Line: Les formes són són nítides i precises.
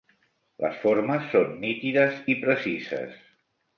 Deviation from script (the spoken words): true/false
true